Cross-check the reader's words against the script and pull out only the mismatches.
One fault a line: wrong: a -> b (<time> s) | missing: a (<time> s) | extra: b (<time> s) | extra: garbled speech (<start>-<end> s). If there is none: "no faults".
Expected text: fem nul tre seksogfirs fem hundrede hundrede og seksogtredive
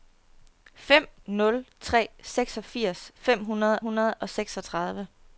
no faults